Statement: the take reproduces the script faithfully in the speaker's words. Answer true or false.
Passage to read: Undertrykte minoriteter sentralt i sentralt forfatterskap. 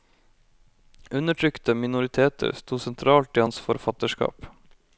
false